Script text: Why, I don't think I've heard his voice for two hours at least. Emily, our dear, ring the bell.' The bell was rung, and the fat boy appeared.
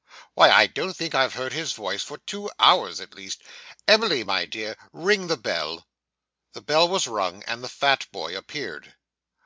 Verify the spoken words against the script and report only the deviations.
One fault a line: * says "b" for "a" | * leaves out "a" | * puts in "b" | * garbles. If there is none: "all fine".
* says "my" for "our"